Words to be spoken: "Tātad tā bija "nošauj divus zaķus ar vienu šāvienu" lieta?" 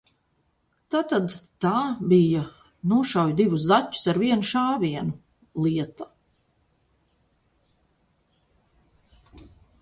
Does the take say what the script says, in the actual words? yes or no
yes